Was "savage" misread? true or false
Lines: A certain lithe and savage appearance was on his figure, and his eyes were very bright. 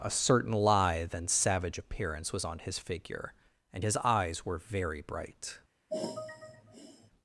false